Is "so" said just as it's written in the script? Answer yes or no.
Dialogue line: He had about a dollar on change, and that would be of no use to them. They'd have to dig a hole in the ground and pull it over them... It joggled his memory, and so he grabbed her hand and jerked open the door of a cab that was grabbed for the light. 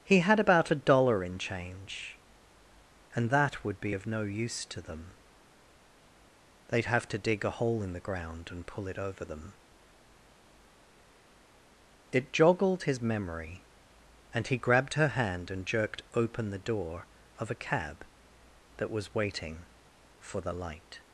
no